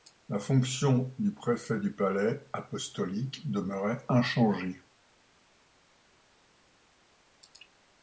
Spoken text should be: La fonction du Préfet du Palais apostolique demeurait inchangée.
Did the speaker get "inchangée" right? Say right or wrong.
right